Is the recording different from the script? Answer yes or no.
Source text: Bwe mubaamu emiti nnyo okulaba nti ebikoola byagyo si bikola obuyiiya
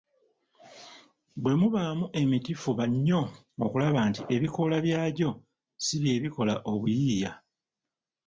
yes